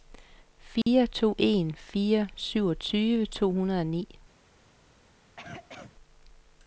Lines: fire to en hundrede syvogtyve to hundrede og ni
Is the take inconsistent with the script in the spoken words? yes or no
yes